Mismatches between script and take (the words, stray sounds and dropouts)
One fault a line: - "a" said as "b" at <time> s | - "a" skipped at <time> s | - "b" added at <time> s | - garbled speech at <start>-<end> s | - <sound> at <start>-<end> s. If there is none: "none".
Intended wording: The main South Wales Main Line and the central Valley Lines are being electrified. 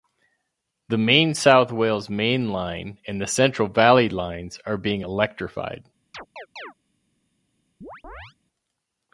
- chirp at 6.1-6.7 s
- chirp at 7.8-8.3 s